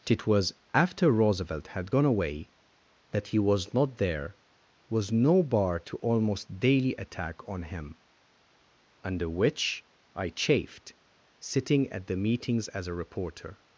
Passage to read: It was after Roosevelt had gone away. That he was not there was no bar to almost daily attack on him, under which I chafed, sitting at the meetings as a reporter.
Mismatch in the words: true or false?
false